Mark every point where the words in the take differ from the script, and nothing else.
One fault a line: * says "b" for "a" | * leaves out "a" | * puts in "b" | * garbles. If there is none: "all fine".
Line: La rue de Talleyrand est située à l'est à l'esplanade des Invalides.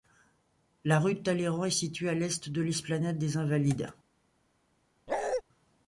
* says "de" for "à"